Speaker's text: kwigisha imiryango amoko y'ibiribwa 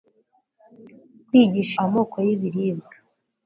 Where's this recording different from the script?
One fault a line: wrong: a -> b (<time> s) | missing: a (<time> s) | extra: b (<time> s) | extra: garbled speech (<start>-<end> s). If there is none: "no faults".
missing: imiryango (1.7 s)